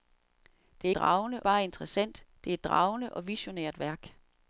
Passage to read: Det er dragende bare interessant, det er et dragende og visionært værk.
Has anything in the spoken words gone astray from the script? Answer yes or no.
no